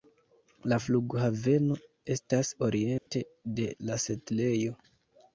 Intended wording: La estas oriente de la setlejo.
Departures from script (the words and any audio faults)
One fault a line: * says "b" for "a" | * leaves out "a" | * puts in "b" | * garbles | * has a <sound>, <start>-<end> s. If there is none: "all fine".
* puts in "flughaveno"
* has a dropout, 3.0-3.1 s